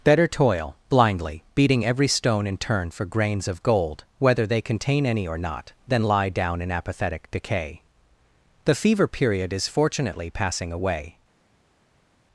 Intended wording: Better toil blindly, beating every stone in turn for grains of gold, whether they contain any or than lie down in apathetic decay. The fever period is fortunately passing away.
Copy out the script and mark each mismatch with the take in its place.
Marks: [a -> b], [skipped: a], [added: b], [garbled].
Better toil blindly, beating every stone in turn for grains of gold, whether they contain any or [added: not] than lie down in apathetic decay. The fever period is fortunately passing away.